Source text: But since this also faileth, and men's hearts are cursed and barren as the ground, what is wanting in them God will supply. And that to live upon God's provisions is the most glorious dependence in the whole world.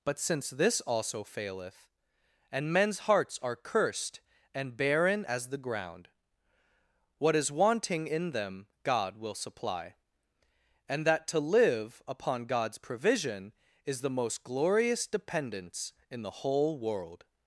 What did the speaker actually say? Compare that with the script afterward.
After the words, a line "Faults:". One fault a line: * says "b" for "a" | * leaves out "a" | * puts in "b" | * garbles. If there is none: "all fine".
But since this also faileth, and men's hearts are cursed and barren as the ground, what is wanting in them God will supply. And that to live upon God's provision is the most glorious dependence in the whole world.
Faults:
* says "provision" for "provisions"